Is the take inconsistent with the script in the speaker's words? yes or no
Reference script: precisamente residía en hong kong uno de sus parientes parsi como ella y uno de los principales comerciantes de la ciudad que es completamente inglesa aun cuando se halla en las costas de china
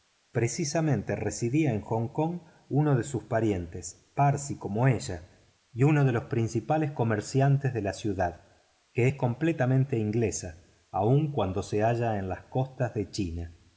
no